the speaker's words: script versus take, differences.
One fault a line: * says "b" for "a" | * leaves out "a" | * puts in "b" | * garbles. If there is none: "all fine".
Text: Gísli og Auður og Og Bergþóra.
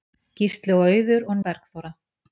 all fine